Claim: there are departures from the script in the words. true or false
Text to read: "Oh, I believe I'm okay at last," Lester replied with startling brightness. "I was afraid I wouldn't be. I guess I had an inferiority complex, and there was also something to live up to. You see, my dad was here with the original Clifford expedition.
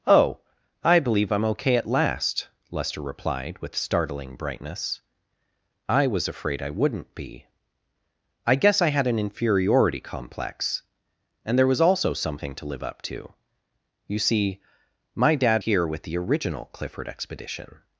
true